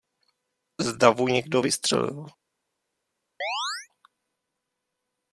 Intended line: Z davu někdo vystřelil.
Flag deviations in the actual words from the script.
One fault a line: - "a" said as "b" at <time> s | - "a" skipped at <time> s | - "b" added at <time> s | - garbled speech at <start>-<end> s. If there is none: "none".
none